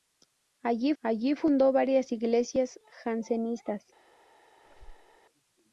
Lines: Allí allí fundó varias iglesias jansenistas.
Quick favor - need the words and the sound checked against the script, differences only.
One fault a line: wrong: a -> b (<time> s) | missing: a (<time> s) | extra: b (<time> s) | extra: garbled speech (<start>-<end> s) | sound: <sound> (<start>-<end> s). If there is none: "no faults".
sound: squeak (4.6-5.2 s)